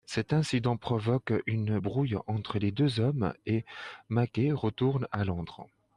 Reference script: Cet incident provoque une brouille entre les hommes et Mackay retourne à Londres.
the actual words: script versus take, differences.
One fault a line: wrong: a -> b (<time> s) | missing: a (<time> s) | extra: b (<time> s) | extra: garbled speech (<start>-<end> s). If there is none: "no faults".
extra: deux (2.7 s)